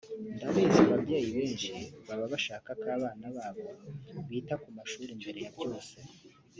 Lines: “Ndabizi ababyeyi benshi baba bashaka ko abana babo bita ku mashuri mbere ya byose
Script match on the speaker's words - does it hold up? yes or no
yes